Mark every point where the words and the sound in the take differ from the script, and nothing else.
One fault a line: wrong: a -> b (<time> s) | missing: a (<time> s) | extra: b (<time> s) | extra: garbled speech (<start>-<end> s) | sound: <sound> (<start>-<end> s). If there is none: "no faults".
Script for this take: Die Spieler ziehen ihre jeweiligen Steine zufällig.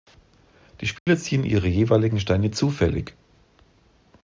sound: dropout (1.0-1.1 s)